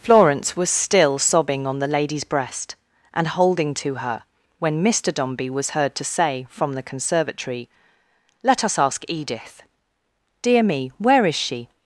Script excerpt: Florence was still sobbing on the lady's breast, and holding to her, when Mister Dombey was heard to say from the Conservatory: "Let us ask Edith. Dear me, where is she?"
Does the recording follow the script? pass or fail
pass